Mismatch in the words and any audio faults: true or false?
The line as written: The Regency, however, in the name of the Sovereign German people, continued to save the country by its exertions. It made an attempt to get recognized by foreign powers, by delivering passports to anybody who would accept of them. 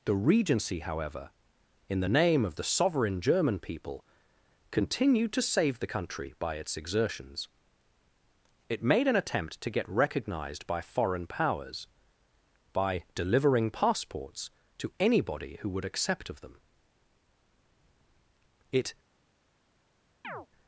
true